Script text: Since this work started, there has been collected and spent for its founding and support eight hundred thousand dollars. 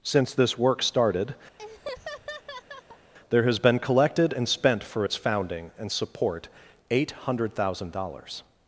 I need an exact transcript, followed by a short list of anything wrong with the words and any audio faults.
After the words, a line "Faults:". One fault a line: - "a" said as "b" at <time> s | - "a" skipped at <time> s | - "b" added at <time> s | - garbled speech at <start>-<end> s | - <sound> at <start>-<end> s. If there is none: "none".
Since this work started, there has been collected and spent for its founding and support eight hundred thousand dollars.
Faults:
- laugh at 1.6-3.1 s